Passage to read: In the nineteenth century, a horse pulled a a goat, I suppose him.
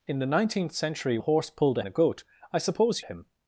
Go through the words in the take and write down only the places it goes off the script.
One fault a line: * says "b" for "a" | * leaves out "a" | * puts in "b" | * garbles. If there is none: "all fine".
all fine